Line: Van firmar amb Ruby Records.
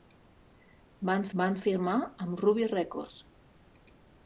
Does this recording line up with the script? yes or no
no